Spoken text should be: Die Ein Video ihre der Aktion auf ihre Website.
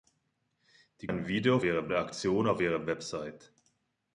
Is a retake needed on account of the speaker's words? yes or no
no